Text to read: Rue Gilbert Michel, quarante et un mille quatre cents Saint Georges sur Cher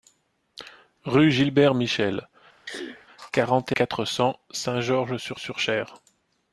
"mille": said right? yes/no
no